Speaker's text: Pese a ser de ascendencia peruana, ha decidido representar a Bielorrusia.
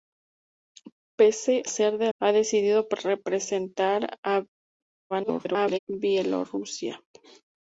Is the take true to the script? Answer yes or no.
no